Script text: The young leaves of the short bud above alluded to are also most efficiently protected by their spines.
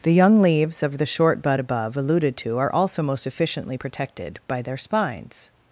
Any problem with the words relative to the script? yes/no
no